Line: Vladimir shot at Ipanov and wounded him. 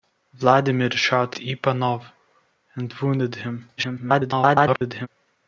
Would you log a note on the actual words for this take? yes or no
yes